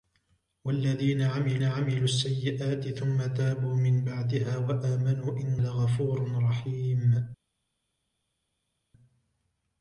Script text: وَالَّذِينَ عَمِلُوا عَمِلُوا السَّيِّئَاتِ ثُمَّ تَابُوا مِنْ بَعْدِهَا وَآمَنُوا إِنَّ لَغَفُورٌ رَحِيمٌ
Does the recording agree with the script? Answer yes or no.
yes